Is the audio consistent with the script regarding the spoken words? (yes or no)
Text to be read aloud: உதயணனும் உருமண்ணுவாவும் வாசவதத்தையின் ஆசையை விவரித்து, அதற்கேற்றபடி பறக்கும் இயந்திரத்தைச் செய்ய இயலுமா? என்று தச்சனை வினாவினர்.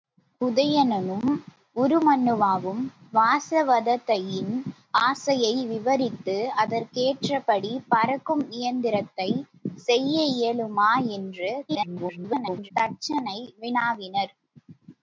no